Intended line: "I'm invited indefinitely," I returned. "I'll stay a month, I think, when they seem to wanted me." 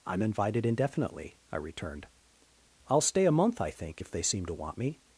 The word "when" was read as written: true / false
false